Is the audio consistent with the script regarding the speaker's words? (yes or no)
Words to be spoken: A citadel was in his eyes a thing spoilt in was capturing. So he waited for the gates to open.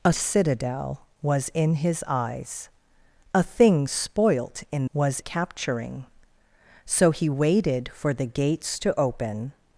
yes